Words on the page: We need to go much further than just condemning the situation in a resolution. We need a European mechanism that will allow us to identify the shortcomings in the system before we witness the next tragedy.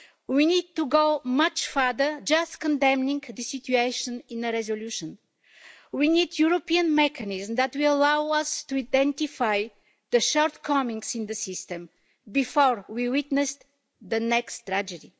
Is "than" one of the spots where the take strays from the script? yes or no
yes